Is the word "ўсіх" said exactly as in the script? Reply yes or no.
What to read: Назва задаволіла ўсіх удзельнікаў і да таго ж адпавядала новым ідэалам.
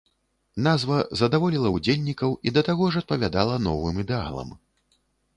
no